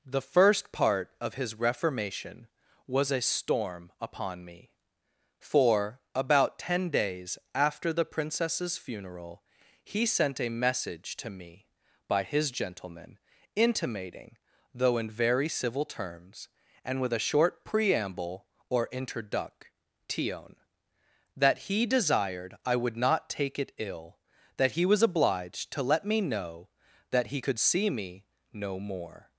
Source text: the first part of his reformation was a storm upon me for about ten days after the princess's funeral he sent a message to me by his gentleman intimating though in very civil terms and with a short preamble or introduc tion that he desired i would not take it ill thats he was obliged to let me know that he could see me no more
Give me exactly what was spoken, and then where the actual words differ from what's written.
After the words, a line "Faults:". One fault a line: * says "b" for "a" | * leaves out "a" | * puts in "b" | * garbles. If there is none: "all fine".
the first part of his reformation was a storm upon me for about ten days after the princess's funeral he sent a message to me by his gentleman intimating though in very civil terms and with a short preamble or introduc tion that he desired i would not take it ill that he was obliged to let me know that he could see me no more
Faults:
* says "that" for "thats"